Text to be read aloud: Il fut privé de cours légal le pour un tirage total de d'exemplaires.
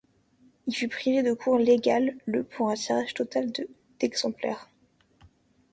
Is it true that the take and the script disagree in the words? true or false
false